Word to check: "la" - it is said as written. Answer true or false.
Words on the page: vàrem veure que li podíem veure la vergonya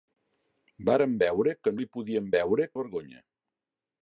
true